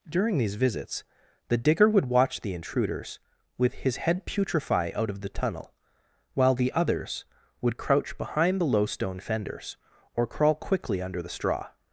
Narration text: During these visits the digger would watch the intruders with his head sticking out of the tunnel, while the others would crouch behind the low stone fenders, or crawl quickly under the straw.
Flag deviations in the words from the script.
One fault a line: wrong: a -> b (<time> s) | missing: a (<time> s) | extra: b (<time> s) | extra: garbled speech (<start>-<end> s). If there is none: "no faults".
wrong: sticking -> putrefy (4.2 s)